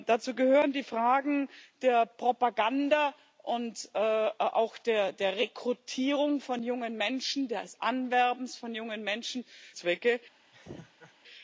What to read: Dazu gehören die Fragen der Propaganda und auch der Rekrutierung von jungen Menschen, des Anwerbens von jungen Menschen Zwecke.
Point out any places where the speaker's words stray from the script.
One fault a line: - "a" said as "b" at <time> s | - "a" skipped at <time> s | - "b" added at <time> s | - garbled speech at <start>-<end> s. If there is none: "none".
none